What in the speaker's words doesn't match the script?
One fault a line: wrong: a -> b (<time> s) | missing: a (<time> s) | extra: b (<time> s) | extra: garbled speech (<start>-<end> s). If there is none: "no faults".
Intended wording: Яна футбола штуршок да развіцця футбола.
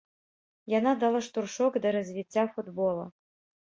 wrong: футбола -> дала (1.1 s)